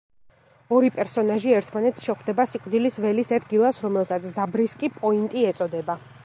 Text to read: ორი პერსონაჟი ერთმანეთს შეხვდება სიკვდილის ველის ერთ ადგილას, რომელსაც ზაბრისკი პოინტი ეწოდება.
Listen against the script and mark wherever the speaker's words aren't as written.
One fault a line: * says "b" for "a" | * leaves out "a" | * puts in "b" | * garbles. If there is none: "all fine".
* leaves out "ერთ"